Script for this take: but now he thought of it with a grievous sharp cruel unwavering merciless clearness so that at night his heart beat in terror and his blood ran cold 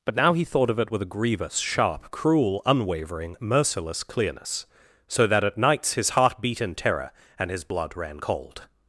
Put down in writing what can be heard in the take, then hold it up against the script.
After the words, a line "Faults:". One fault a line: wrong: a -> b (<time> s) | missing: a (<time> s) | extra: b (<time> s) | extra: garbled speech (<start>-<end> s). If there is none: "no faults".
but now he thought of it with a grievous sharp cruel unwavering merciless clearness so that at nights his heart beat in terror and his blood ran cold
Faults:
wrong: night -> nights (5.6 s)